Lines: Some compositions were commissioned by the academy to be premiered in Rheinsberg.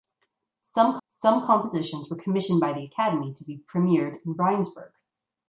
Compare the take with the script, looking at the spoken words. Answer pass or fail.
fail